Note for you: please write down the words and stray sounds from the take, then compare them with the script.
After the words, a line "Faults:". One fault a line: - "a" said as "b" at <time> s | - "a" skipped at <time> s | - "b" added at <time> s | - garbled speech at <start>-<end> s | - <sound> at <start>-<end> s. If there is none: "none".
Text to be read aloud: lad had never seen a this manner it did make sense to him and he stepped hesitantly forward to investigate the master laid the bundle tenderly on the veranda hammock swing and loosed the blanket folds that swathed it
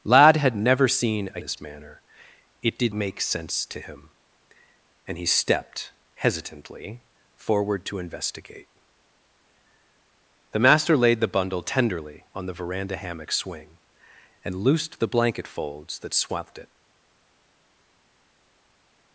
lad had never seen a this manner it did make sense to him and he stepped hesitantly forward to investigate the master laid the bundle tenderly on the veranda hammock swing and loosed the blanket folds that swathed it
Faults:
none